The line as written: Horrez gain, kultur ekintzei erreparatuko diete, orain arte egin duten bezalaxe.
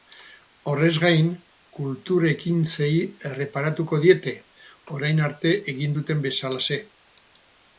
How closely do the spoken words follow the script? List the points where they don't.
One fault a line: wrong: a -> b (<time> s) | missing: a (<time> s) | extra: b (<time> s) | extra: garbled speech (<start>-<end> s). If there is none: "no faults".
no faults